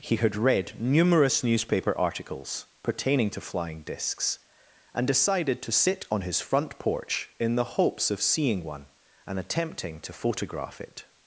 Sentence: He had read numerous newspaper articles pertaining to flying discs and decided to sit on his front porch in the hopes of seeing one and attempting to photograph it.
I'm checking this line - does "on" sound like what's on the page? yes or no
yes